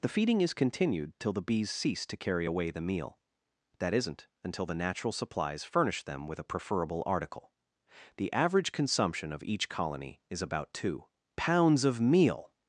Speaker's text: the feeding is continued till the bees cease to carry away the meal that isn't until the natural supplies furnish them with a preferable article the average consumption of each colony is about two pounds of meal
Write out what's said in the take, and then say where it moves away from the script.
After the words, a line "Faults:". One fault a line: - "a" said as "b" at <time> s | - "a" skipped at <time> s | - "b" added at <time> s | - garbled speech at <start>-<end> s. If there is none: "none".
the feeding is continued till the bees cease to carry away the meal that isn't until the natural supplies furnish them with a preferable article the average consumption of each colony is about two pounds of meal
Faults:
none